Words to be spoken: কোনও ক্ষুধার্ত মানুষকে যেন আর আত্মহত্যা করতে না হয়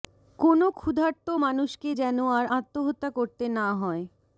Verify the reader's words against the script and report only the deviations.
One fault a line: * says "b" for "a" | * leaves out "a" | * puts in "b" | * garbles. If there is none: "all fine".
all fine